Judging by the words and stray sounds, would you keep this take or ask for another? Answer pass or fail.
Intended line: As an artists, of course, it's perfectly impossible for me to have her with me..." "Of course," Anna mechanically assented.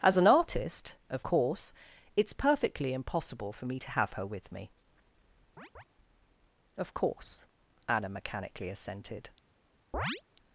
fail